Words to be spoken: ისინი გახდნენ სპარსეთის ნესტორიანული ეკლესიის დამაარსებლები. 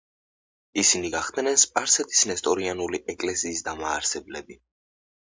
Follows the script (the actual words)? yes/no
yes